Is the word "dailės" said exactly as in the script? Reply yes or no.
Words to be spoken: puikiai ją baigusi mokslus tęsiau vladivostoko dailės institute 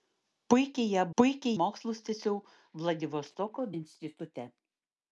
no